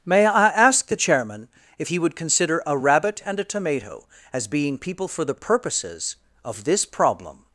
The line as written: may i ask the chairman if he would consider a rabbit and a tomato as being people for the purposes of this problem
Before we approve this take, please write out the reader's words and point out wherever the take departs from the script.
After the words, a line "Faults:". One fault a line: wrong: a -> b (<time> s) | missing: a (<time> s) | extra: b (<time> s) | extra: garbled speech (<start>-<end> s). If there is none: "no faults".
may i ask the chairman if he would consider a rabbit and a tomato as being people for the purposes of this problem
Faults:
no faults